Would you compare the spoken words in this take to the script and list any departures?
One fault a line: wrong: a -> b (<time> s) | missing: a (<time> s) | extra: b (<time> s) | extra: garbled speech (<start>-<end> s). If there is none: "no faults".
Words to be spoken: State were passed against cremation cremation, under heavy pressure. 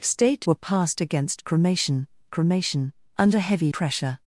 no faults